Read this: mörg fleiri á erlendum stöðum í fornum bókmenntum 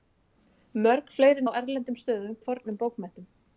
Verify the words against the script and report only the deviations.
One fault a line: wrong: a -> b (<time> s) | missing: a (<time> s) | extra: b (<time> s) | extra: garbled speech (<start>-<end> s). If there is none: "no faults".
no faults